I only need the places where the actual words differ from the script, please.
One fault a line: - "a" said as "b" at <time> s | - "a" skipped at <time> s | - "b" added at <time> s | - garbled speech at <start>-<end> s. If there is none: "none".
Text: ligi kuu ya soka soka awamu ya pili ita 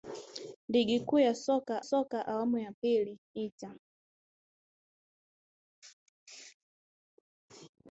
none